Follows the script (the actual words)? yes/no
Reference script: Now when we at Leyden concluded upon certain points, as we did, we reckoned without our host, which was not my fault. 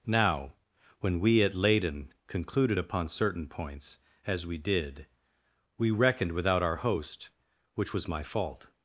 no